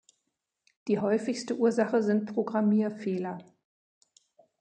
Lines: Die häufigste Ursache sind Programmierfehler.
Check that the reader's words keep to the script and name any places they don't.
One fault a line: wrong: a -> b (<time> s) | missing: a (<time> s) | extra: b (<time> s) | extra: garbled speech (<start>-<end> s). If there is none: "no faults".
no faults